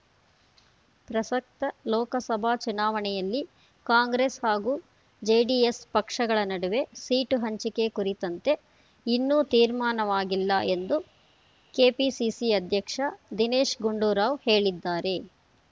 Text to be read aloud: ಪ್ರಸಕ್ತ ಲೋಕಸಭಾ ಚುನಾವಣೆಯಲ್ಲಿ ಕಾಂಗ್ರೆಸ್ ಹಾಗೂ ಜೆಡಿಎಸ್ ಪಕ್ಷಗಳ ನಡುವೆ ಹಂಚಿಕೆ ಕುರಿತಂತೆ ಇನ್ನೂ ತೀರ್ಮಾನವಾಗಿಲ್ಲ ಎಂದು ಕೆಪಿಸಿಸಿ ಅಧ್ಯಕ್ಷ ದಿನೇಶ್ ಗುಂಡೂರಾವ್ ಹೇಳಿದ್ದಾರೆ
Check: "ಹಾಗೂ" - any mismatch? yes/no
no